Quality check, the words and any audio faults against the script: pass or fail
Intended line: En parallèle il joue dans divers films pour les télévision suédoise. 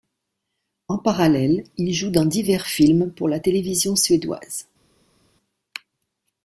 fail